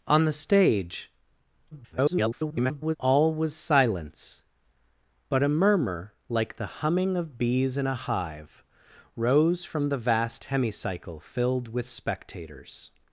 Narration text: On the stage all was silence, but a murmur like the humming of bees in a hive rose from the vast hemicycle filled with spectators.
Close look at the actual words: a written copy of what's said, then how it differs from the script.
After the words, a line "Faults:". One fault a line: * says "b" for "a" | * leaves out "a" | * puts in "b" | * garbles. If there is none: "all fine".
On the stage [garbled] all was silence, but a murmur like the humming of bees in a hive rose from the vast hemicycle filled with spectators.
Faults:
* garbles